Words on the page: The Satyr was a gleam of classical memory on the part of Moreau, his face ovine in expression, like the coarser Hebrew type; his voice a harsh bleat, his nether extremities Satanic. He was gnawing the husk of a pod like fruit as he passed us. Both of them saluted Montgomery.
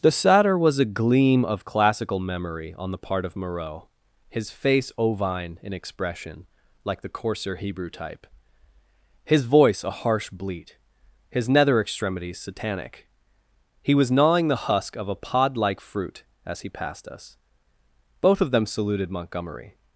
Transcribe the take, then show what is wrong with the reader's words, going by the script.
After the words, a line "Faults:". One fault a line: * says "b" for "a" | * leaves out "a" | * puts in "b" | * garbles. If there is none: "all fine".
The Satyr was a gleam of classical memory on the part of Moreau, his face ovine in expression, like the coarser Hebrew type; his voice a harsh bleat, his nether extremities Satanic. He was gnawing the husk of a pod like fruit as he passed us. Both of them saluted Montgomery.
Faults:
all fine